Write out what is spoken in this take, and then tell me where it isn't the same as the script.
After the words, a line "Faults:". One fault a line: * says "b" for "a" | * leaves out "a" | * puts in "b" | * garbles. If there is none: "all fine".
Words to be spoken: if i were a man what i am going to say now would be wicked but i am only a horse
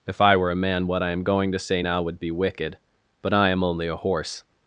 if i were a man what i am going to say now would be wicked but i am only a horse
Faults:
all fine